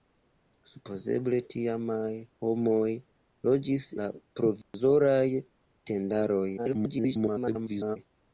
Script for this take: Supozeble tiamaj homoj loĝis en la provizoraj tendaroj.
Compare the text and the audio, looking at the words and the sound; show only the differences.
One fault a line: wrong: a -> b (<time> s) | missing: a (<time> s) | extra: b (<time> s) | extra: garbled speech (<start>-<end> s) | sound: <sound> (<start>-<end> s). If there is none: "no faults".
missing: en (3.9 s)
sound: dropout (4.6-4.7 s)
extra: garbled speech (6.6-8.0 s)